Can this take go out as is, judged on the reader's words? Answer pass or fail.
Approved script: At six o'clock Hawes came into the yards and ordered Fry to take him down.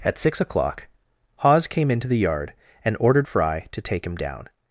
fail